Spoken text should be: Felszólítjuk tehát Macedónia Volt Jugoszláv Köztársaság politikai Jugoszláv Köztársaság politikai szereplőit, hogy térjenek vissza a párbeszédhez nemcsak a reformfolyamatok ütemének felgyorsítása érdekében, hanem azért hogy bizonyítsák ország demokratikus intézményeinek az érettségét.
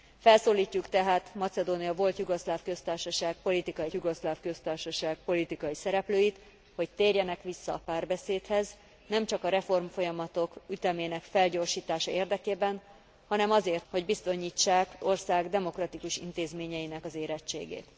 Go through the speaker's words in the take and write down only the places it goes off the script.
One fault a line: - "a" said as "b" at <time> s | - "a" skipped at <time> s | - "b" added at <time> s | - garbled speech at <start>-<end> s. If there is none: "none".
none